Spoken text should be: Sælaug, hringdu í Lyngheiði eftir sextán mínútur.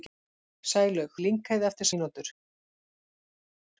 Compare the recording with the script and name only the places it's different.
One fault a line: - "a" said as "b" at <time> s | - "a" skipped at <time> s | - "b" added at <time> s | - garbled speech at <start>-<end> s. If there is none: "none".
- "hringdu" skipped at 1.1 s
- "sextán" skipped at 1.9 s